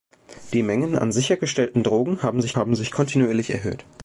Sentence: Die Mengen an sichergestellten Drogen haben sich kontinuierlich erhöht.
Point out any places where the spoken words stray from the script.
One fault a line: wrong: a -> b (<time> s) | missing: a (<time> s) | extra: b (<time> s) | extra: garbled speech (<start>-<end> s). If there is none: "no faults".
extra: haben sich (2.6 s)